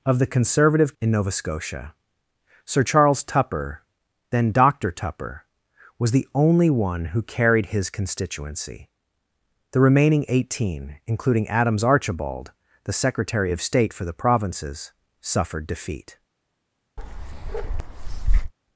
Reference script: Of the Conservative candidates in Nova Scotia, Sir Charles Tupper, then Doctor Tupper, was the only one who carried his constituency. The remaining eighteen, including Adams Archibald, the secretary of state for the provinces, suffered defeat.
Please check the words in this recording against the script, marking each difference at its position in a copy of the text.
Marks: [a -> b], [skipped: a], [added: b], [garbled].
Of the Conservative [skipped: candidates] in Nova Scotia, Sir Charles Tupper, then Doctor Tupper, was the only one who carried his constituency. The remaining eighteen, including Adams Archibald, the secretary of state for the provinces, suffered defeat.